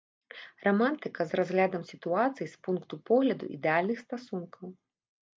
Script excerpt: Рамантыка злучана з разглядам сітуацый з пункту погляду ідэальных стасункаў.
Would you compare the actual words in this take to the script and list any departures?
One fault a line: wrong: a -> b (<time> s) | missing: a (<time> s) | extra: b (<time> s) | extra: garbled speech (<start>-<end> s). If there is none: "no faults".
missing: злучана (1.2 s)